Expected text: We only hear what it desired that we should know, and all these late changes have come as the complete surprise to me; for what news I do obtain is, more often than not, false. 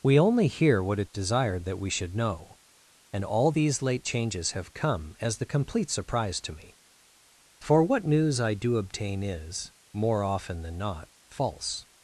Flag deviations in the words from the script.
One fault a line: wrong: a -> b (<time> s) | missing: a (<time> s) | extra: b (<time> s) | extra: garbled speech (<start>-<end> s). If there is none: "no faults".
no faults